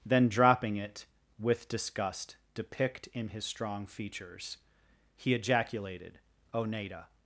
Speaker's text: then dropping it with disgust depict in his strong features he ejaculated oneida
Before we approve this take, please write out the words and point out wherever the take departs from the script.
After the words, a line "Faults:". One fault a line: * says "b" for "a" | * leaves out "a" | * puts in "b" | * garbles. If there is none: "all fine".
then dropping it with disgust depict in his strong features he ejaculated oneida
Faults:
all fine